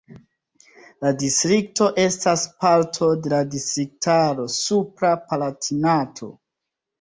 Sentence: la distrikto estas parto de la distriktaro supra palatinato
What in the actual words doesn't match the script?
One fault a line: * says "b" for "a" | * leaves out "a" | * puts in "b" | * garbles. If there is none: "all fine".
all fine